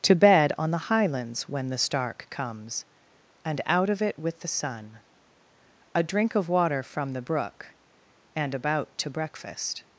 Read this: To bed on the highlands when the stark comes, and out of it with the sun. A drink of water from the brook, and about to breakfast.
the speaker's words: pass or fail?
pass